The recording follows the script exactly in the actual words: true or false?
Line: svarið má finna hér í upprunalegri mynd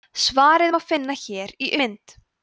false